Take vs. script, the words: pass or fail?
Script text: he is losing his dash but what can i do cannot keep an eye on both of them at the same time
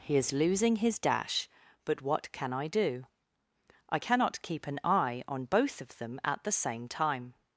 fail